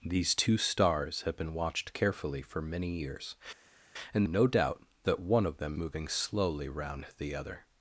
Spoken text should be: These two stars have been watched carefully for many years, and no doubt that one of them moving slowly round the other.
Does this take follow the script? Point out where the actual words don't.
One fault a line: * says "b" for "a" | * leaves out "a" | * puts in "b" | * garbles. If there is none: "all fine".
all fine